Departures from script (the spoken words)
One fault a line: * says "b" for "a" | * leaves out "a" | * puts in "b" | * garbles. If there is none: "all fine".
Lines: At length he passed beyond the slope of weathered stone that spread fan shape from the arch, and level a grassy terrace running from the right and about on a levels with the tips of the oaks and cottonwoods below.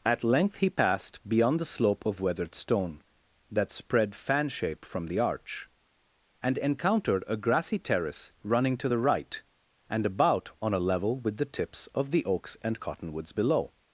* says "encountered" for "level"
* says "to" for "from"
* says "level" for "levels"